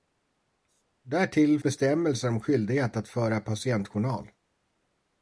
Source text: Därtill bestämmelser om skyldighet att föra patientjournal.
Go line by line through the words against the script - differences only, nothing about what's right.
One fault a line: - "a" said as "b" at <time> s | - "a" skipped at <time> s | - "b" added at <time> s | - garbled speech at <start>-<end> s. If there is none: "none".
none